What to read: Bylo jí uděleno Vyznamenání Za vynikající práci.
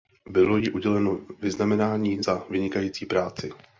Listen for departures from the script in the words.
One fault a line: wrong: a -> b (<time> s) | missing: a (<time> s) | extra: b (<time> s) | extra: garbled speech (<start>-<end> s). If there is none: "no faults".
no faults